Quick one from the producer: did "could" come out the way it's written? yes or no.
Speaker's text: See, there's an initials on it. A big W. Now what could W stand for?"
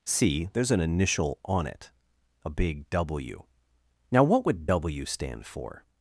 no